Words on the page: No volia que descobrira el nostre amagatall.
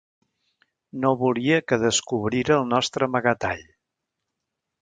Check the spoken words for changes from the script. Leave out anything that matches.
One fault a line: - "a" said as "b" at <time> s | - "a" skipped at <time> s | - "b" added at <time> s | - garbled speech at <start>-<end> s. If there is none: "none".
none